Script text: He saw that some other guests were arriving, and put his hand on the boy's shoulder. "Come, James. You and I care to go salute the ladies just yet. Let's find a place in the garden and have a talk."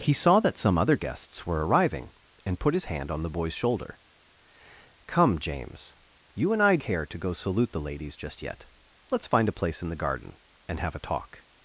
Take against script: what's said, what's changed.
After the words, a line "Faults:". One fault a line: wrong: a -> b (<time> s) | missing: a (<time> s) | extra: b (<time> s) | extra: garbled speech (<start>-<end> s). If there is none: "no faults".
He saw that some other guests were arriving, and put his hand on the boy's shoulder. "Come, James. You and I care to go salute the ladies just yet. Let's find a place in the garden and have a talk."
Faults:
no faults